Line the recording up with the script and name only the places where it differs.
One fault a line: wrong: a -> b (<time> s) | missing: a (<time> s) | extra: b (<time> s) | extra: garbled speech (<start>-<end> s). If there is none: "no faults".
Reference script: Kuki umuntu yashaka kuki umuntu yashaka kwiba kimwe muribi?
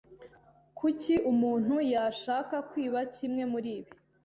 missing: kuki umuntu yashaka (2.5 s)